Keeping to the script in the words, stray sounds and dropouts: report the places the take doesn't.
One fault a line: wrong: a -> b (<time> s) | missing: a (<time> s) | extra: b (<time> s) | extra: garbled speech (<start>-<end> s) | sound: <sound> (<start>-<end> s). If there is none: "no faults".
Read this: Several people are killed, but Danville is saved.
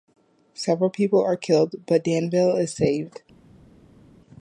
no faults